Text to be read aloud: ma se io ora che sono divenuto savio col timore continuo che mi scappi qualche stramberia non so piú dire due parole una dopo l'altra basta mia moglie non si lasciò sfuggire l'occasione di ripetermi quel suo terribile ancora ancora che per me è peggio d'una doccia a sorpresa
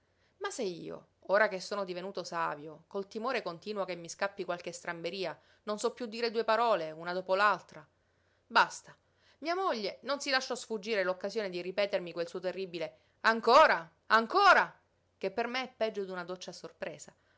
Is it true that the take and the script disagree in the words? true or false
false